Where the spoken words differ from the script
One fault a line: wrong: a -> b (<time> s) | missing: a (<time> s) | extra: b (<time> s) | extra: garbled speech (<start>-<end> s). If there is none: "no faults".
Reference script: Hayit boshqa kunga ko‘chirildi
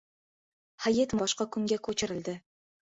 no faults